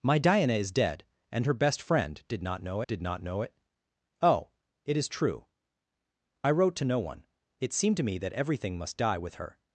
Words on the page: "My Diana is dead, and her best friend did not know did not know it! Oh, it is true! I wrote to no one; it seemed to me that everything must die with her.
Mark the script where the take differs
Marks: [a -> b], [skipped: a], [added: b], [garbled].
"My Diana is dead, and her best friend did not know did not know it! Oh, it is true! I wrote to no one; it seemed to me that everything must die with her.